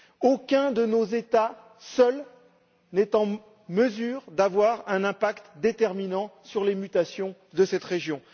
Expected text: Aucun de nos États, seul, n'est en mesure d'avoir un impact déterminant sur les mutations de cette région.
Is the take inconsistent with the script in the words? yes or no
no